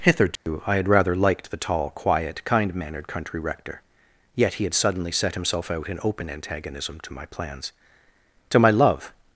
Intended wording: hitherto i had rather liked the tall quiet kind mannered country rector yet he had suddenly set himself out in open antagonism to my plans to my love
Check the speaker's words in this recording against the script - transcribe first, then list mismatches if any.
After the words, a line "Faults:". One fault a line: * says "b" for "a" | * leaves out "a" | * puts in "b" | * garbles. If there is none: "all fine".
hitherto i had rather liked the tall quiet kind mannered country rector yet he had suddenly set himself out in open antagonism to my plans to my love
Faults:
all fine